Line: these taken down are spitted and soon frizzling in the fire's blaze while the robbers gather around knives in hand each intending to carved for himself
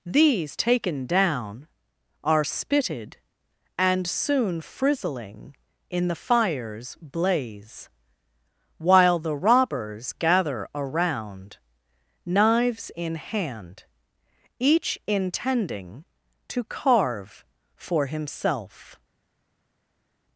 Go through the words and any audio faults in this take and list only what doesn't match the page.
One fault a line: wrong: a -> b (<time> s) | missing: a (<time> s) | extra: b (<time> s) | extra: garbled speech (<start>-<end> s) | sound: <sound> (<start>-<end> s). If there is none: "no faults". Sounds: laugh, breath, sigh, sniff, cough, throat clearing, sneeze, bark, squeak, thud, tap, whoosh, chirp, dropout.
wrong: carved -> carve (16.6 s)